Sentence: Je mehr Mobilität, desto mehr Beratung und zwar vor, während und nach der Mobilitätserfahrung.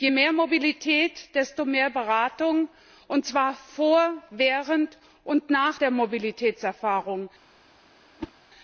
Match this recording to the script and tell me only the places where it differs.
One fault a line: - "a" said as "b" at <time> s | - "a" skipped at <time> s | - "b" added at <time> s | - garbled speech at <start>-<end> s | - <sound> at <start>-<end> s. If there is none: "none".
- whoosh at 8.2-8.3 s